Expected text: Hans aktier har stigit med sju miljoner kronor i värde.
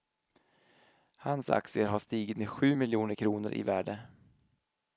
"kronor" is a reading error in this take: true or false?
false